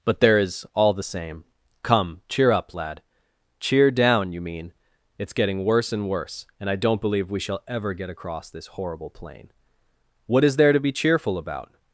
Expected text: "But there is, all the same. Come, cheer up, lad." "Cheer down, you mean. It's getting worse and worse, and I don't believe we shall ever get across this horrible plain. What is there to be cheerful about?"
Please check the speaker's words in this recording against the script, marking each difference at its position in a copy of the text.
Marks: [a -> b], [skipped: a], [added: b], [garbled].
"But there is, all the same. Come, cheer up, lad." "Cheer down, you mean. It's getting worse and worse, and I don't believe we shall ever get across this horrible plain. What is there to be cheerful about?"